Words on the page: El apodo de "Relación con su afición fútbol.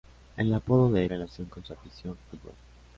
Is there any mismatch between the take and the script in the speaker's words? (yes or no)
no